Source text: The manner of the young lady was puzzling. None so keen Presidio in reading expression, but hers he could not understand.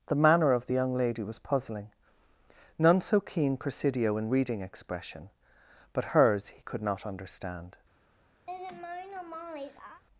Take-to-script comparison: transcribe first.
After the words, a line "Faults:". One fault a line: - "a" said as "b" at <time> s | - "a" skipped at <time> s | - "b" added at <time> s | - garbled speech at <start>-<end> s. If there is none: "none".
The manner of the young lady was puzzling. None so keen Presidio in reading expression, but hers he could not understand.
Faults:
none